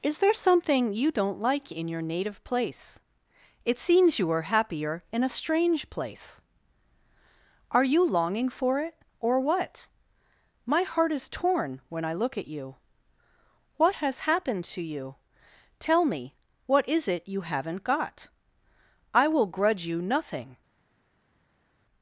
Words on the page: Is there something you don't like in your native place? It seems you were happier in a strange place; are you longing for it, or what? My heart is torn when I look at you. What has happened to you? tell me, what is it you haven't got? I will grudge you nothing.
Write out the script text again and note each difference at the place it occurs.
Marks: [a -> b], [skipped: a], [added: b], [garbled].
Is there something you don't like in your native place? It seems you [were -> are] happier in a strange place; are you longing for it, or what? My heart is torn when I look at you. What has happened to you? tell me, what is it you haven't got? I will grudge you nothing.